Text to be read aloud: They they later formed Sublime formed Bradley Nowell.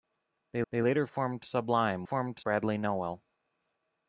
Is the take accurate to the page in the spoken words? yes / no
yes